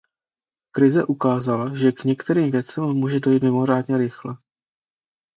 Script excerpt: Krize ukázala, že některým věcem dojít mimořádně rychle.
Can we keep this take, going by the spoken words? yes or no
no